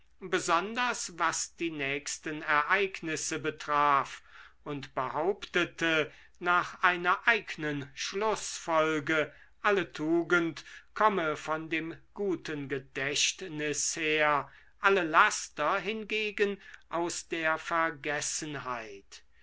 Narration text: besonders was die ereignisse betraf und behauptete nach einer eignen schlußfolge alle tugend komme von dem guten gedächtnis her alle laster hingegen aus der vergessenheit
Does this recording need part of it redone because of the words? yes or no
yes